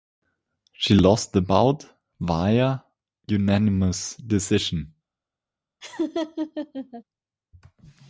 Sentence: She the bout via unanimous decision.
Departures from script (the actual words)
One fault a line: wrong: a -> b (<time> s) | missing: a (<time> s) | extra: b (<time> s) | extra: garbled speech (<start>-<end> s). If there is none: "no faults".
extra: lost (0.9 s)